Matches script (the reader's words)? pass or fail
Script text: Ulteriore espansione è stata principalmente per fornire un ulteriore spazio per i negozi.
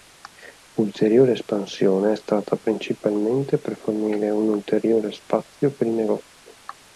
pass